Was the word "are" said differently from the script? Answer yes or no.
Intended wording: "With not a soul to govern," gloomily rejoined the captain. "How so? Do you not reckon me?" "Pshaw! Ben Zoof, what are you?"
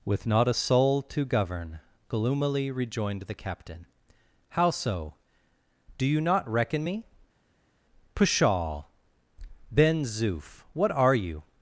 no